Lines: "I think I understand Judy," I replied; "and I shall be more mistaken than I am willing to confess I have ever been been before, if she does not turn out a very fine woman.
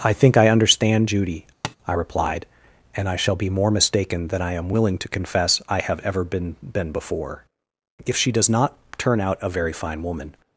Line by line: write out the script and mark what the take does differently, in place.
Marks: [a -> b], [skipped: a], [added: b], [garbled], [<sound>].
"I think I understand Judy," [tap] I replied; "and I shall be more mistaken than I am willing to confess I have ever been been before, if she does not turn out a very fine woman.